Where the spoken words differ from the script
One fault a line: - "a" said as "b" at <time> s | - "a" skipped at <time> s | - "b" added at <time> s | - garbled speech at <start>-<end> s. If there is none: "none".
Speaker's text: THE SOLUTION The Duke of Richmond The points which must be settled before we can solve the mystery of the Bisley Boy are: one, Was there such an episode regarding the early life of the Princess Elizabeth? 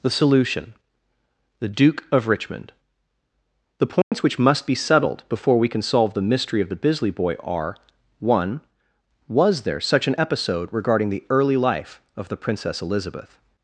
none